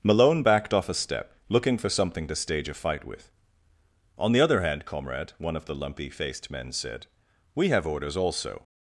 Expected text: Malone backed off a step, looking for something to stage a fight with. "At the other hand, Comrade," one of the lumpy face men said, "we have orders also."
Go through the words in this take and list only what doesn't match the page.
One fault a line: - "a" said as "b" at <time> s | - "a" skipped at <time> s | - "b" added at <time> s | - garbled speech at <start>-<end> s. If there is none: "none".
- "At" said as "On" at 4.2 s
- "face" said as "faced" at 6.1 s